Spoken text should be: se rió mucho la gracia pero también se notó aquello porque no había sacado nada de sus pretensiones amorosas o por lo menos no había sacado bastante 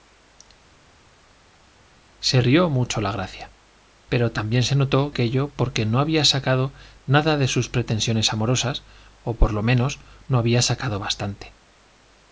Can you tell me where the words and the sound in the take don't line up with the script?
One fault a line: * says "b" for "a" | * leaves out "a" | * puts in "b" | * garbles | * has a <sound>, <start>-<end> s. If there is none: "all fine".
all fine